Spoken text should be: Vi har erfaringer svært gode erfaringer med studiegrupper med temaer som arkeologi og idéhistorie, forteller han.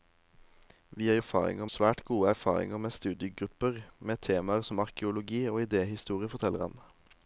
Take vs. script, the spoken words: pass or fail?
pass